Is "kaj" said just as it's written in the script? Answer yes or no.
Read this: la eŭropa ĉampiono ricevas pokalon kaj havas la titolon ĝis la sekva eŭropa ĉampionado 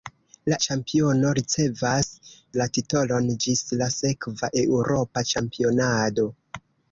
no